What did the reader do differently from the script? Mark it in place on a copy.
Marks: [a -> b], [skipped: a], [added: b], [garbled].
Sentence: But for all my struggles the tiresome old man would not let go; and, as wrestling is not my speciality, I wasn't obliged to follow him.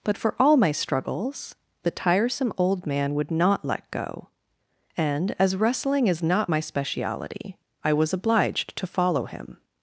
But for all my struggles the tiresome old man would not let go; and, as wrestling is not my speciality, I [wasn't -> was] obliged to follow him.